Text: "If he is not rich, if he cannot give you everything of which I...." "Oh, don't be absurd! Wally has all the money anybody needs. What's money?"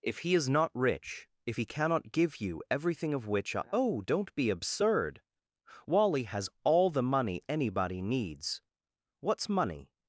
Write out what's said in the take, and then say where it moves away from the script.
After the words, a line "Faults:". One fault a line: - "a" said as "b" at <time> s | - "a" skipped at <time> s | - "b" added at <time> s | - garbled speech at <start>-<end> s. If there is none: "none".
"If he is not rich, if he cannot give you everything of which I...." "Oh, don't be absurd! Wally has all the money anybody needs. What's money?"
Faults:
none